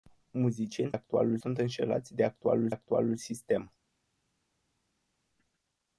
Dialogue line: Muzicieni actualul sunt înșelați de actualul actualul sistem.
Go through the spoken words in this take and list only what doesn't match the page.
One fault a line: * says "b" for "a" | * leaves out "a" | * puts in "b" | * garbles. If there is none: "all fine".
all fine